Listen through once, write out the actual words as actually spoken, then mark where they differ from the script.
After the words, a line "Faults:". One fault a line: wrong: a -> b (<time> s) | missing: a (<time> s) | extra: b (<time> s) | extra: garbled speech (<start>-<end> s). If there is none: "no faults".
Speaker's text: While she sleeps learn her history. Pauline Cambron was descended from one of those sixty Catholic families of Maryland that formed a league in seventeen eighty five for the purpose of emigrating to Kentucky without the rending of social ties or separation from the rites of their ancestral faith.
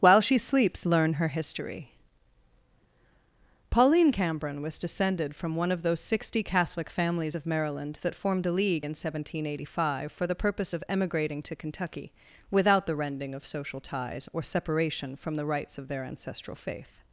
While she sleeps learn her history. Pauline Cambron was descended from one of those sixty Catholic families of Maryland that formed a league in seventeen eighty five for the purpose of emigrating to Kentucky without the rending of social ties or separation from the rites of their ancestral faith.
Faults:
no faults